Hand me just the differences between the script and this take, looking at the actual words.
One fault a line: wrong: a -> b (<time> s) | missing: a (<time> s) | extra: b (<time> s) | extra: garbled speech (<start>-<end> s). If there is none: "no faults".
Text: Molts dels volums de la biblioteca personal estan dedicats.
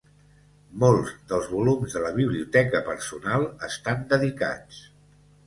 no faults